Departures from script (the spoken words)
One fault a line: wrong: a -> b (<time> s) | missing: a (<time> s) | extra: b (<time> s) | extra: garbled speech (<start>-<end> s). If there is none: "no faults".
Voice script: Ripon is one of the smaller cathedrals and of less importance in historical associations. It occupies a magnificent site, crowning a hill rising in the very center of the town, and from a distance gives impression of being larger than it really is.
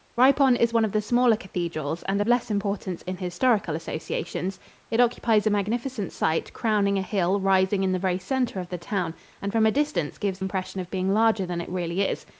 no faults